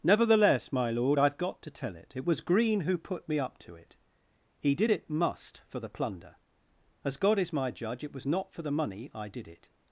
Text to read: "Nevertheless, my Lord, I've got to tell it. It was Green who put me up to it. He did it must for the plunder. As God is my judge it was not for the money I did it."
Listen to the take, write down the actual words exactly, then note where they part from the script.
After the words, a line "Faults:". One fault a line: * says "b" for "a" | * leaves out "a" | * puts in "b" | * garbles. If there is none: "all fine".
"Nevertheless, my Lord, I've got to tell it. It was Green who put me up to it. He did it must for the plunder. As God is my judge it was not for the money I did it."
Faults:
all fine